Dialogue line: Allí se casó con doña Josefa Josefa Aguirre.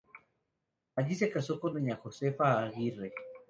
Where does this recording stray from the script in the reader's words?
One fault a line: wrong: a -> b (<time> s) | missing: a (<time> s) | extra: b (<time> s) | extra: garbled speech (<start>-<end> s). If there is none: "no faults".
missing: Josefa (2.6 s)